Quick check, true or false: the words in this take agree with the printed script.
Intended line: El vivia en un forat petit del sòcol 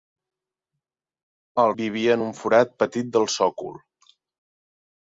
true